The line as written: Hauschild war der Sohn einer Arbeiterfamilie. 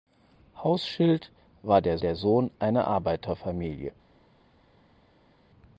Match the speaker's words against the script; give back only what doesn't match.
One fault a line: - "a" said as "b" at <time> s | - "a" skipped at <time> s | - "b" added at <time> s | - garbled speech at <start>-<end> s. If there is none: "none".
- "der" added at 2.0 s